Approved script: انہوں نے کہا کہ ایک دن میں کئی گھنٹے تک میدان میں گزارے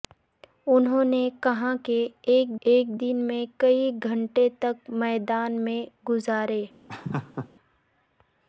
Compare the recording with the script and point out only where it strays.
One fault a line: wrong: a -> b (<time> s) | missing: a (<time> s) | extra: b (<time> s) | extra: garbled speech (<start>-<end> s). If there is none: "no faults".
extra: ایک (2.6 s)